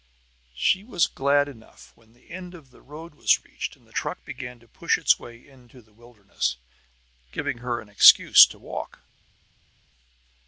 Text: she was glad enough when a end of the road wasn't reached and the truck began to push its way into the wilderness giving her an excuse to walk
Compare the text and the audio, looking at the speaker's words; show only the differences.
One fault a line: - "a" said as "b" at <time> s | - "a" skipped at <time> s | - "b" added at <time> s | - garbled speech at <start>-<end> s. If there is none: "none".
- "a" said as "the" at 2.1 s
- "wasn't" said as "was" at 3.1 s